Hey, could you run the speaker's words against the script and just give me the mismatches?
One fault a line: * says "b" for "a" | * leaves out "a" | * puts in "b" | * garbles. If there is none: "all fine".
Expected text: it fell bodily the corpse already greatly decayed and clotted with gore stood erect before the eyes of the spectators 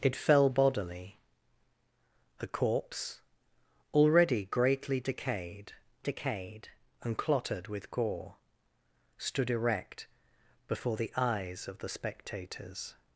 * puts in "decayed"